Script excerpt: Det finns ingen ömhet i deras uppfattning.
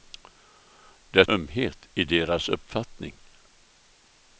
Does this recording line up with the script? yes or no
no